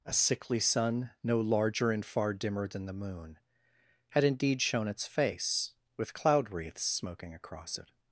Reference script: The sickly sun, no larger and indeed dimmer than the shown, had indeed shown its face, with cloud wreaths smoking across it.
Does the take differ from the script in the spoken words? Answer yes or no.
yes